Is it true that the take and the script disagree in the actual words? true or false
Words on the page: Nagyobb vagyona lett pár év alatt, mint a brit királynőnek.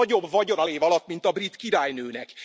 true